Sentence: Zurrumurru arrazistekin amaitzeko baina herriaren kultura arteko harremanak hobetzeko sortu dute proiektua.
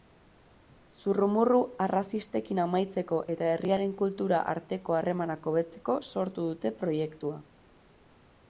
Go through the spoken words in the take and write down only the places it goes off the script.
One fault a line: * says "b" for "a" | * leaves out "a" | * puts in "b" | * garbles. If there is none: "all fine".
* says "eta" for "baina"